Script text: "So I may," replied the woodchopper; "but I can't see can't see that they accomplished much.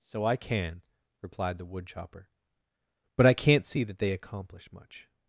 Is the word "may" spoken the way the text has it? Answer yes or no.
no